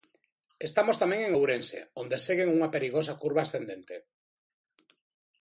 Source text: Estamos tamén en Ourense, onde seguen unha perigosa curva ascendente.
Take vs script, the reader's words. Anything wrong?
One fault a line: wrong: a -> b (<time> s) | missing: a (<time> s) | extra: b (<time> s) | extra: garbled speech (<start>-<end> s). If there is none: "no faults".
no faults